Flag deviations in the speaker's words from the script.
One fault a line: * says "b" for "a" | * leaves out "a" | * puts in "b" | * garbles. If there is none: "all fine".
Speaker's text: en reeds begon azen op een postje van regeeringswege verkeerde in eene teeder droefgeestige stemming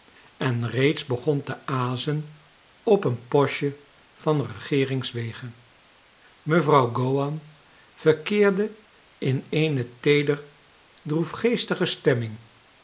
* puts in "te"
* puts in "mevrouw gowan"